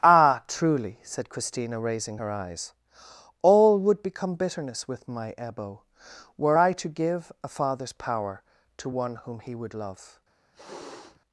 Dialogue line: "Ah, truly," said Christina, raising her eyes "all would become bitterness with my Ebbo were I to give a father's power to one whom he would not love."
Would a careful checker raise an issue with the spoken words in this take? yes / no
yes